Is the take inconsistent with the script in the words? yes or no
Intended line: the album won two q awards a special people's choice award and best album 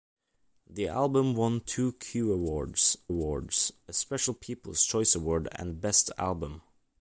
yes